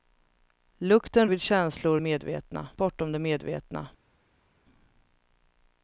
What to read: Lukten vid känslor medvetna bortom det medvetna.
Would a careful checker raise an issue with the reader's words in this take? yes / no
no